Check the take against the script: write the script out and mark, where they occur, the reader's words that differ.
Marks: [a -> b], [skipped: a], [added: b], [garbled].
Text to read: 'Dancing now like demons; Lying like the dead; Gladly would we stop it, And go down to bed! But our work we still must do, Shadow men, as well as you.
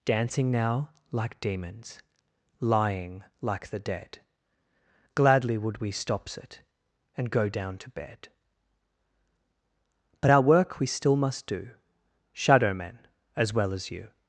'Dancing now like demons; Lying like the dead; Gladly would we [stop -> stops] it, And go down to bed! But our work we still must do, Shadow men, as well as you.